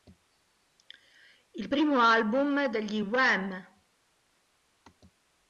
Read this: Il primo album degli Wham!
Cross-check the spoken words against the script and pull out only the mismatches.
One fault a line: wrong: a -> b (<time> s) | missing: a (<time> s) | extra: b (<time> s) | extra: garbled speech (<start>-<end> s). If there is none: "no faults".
no faults